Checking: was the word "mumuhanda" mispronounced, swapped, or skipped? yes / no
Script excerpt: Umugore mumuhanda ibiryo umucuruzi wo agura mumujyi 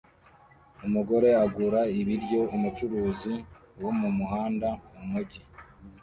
yes